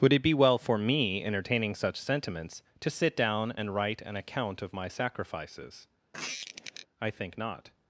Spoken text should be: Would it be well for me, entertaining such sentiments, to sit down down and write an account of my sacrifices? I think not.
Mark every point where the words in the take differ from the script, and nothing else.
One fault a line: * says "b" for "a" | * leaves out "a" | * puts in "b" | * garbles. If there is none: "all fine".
* leaves out "down"